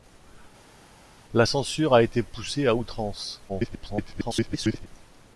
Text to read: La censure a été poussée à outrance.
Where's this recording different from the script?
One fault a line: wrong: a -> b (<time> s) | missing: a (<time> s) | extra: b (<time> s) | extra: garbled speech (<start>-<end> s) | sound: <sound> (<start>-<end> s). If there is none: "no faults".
extra: garbled speech (3.5-4.9 s)